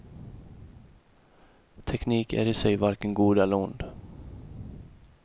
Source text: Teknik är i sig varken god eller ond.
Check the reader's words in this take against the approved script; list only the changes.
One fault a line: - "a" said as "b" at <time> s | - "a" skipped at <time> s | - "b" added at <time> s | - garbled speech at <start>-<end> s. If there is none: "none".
none